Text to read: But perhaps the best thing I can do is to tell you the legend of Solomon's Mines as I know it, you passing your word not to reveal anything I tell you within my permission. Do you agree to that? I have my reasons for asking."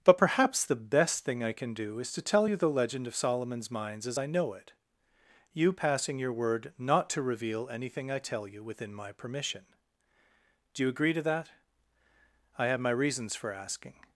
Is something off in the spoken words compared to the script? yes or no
no